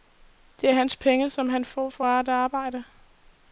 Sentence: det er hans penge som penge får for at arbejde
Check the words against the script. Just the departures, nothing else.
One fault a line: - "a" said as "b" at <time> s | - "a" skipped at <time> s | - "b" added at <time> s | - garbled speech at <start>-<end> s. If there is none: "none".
- "penge" said as "han" at 1.5 s